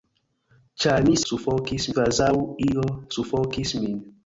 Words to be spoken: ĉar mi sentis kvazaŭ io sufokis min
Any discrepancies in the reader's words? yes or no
yes